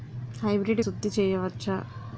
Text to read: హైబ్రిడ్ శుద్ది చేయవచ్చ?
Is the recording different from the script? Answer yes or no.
no